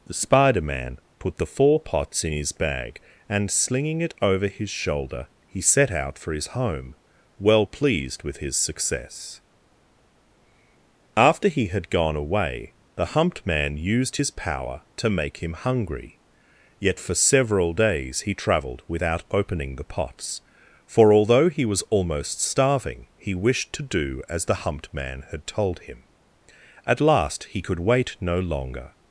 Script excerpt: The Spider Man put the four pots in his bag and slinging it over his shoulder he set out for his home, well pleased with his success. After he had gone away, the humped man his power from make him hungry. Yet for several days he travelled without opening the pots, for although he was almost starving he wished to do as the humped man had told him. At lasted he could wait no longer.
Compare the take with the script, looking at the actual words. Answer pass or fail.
fail